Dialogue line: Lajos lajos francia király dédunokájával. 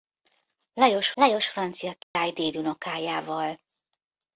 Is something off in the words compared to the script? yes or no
no